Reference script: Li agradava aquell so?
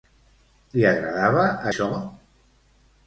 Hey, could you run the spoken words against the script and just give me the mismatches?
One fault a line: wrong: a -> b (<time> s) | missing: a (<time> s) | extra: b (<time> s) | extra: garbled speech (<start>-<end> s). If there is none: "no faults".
missing: aquell (1.4 s)